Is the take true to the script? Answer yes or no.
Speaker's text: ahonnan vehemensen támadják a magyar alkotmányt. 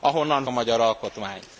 no